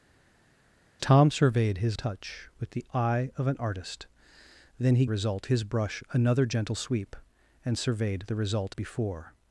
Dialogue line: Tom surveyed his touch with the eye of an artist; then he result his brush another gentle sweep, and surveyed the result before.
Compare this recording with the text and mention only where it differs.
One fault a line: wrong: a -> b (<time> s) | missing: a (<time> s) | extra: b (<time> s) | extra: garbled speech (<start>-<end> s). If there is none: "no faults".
no faults